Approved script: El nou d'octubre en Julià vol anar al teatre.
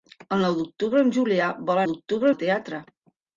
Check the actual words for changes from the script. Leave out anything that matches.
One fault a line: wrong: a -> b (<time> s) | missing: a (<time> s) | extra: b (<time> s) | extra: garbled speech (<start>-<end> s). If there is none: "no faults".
wrong: anar -> d'octubre (1.9 s)